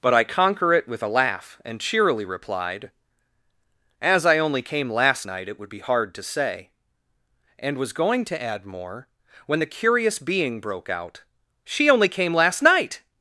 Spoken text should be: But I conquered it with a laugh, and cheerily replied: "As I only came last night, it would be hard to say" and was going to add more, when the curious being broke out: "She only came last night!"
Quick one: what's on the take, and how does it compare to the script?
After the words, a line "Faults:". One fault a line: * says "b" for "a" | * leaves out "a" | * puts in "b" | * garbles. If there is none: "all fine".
But I conquer it with a laugh, and cheerily replied: "As I only came last night, it would be hard to say" and was going to add more, when the curious being broke out: "She only came last night!"
Faults:
* says "conquer" for "conquered"